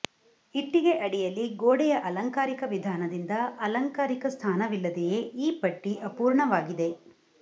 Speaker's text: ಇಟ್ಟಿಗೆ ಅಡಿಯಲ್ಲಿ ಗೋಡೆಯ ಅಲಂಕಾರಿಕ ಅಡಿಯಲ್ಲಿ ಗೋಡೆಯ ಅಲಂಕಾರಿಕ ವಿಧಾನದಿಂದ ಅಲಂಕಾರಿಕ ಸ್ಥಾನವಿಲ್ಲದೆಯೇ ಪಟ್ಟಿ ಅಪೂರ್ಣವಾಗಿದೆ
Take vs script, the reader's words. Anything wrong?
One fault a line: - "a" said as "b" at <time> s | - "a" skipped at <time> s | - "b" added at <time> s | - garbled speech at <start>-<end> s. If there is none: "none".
- "ಅಡಿಯಲ್ಲಿ ಗೋಡೆಯ ಅಲಂಕಾರಿಕ" skipped at 2.6 s
- "ಈ" added at 5.4 s